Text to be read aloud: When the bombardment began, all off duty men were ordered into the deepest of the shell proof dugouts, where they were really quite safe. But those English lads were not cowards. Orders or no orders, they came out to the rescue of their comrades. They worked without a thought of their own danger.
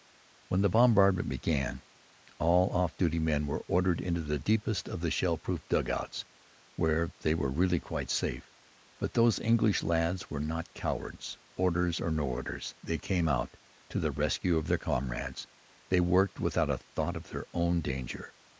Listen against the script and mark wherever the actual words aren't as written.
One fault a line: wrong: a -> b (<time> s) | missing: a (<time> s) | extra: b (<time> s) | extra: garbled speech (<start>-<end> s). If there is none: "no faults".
no faults